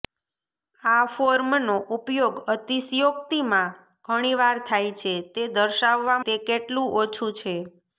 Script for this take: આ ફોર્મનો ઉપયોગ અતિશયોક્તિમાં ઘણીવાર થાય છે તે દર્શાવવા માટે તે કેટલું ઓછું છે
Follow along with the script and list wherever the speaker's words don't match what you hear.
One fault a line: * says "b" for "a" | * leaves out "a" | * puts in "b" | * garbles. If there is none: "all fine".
* leaves out "માટે"